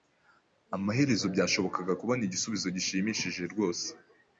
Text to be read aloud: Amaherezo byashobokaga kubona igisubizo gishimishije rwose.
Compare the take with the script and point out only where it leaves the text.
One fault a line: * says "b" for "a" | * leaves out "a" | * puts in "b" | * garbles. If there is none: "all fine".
all fine